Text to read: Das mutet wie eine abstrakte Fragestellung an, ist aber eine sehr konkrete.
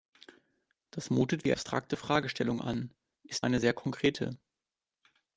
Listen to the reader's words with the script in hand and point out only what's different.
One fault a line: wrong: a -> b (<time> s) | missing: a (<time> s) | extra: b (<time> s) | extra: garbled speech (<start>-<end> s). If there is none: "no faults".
missing: eine (1.5 s)
missing: aber (3.5 s)